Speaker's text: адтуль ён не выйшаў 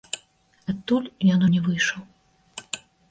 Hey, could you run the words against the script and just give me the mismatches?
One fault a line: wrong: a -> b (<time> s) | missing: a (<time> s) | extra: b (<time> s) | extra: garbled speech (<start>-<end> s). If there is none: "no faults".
no faults